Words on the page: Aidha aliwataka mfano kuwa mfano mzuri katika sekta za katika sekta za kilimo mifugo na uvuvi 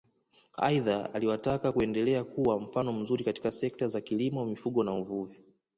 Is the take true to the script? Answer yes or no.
no